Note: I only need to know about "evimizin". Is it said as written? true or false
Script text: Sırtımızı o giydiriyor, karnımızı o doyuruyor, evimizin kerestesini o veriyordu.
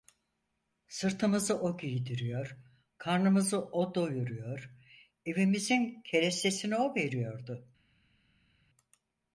true